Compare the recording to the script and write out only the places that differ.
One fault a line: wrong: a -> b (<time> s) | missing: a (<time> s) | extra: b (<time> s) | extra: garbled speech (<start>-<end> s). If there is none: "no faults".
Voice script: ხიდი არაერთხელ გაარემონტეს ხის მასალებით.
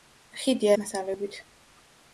missing: არაერთხელ გაარემონტეს ხის (0.7 s)